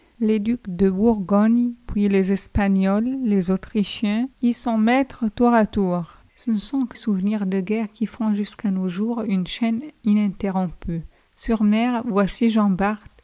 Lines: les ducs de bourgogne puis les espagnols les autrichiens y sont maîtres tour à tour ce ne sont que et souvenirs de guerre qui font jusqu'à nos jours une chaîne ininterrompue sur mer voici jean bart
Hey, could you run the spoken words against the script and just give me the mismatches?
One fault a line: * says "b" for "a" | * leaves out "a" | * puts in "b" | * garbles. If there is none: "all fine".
all fine